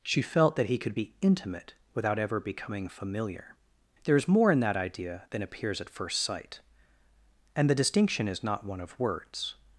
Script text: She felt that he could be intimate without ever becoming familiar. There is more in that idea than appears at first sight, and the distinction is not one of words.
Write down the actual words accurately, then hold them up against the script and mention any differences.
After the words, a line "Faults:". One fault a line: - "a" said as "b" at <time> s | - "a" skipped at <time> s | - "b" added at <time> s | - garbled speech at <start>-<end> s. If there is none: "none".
She felt that he could be intimate without ever becoming familiar. There is more in that idea than appears at first sight, and the distinction is not one of words.
Faults:
none